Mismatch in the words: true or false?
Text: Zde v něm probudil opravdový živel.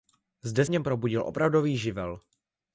false